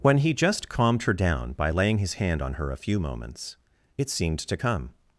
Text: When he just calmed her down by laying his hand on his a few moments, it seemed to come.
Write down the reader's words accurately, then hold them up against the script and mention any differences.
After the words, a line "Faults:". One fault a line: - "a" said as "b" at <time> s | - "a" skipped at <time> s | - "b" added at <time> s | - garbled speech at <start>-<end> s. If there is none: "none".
When he just calmed her down by laying his hand on her a few moments, it seemed to come.
Faults:
- "his" said as "her" at 2.5 s